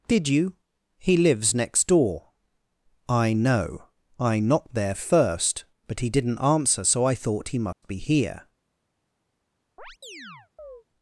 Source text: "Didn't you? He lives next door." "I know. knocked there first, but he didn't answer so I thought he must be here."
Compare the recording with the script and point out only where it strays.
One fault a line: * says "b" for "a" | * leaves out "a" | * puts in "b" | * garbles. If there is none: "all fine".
* says "Did" for "Didn't"
* puts in "I"